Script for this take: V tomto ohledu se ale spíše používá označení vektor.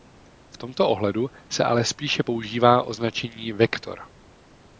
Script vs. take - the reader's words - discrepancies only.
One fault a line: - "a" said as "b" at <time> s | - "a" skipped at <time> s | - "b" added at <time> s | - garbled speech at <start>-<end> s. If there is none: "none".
none